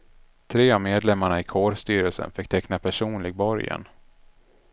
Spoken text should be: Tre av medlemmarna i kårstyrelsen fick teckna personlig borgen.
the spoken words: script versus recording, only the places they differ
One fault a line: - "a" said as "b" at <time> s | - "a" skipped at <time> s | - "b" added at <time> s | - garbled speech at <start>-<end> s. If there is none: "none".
none